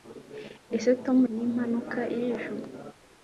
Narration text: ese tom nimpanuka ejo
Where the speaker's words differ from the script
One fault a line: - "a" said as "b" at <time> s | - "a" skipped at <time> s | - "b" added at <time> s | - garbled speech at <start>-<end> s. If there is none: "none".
none